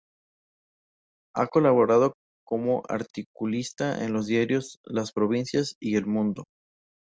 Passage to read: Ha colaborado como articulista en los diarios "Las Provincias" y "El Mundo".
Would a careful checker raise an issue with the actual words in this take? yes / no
no